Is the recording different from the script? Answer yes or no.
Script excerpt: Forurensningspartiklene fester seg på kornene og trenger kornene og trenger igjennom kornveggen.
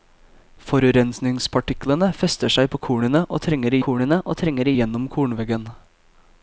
no